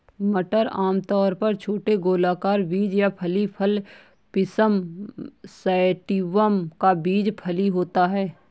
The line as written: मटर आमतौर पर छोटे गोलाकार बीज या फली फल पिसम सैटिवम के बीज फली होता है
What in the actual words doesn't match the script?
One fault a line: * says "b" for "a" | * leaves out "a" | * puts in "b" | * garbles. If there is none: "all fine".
* says "का" for "के"